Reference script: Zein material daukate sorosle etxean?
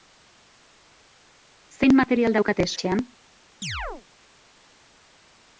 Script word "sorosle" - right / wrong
wrong